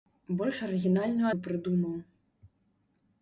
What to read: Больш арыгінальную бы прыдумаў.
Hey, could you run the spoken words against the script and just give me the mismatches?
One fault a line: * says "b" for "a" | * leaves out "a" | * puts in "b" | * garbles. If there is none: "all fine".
all fine